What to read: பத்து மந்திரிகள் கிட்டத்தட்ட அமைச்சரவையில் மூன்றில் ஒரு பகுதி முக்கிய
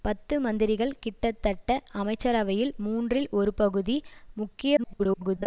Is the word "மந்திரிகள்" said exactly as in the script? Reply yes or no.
yes